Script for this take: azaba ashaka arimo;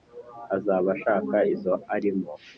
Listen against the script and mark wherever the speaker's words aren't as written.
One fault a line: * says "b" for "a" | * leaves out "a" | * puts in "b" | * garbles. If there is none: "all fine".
* puts in "izo"